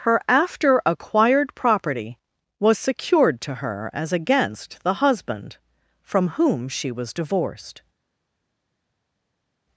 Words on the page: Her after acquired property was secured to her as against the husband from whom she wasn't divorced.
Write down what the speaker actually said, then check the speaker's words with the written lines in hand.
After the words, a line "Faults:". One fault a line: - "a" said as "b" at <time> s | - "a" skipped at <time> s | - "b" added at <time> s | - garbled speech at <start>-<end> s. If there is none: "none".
Her after acquired property was secured to her as against the husband from whom she was divorced.
Faults:
- "wasn't" said as "was" at 6.9 s